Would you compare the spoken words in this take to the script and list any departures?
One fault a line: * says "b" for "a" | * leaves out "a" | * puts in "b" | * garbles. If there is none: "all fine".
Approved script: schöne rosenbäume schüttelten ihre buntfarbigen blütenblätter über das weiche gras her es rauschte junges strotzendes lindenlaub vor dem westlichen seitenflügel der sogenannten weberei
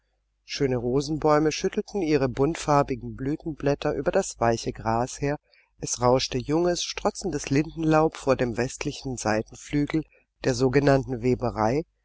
all fine